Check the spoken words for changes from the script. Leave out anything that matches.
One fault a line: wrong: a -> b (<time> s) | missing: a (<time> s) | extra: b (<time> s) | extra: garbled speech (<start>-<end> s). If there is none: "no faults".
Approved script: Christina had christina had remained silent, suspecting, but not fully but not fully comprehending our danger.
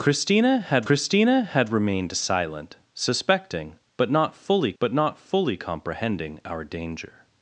no faults